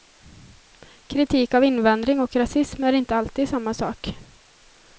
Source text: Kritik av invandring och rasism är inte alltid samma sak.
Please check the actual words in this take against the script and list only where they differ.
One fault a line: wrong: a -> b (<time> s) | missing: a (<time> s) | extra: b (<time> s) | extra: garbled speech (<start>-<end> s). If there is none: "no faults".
no faults